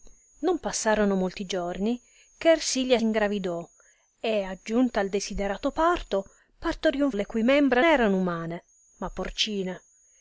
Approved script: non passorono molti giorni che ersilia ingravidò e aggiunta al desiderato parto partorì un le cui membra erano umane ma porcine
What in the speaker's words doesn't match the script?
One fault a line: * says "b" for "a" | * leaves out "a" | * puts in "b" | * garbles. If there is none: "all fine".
all fine